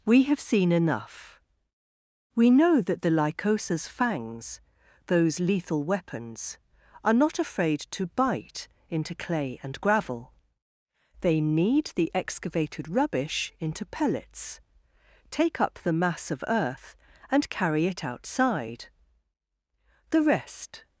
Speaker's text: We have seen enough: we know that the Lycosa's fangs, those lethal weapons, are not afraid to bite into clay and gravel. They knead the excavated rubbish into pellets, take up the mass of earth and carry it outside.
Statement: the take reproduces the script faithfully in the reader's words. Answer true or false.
false